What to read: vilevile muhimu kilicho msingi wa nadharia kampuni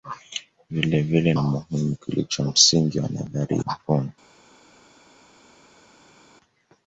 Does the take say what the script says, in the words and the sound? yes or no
yes